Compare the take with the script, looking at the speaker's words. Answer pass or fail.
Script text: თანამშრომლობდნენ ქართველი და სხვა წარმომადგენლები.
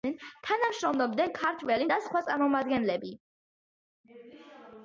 pass